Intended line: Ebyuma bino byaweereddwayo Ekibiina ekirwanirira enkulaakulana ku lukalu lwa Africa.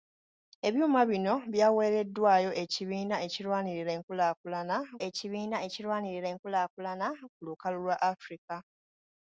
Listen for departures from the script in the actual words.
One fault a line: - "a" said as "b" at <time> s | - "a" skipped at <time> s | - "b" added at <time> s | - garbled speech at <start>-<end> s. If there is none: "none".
- "Ekibiina ekirwanirira enkulaakulana" added at 5.1 s